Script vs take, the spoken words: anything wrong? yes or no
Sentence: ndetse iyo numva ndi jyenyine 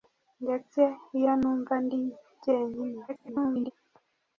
yes